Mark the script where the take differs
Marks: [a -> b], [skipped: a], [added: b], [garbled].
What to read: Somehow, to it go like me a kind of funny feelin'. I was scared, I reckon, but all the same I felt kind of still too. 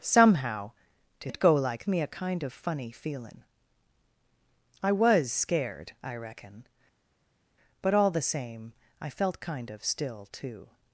Somehow, to it go like me a kind of funny feelin'. I was scared, I reckon, but all the same I felt kind of still too.